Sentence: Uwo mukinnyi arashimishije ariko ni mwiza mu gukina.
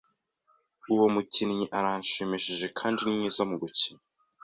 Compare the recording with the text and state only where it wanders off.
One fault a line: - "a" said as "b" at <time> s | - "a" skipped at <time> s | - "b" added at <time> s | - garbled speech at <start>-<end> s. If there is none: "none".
- "ariko" said as "kandi" at 2.8 s